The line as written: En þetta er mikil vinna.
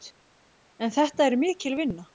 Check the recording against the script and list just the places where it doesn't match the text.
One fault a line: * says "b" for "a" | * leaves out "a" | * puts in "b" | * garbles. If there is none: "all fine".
all fine